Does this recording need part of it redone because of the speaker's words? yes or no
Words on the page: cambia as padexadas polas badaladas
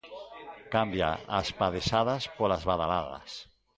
no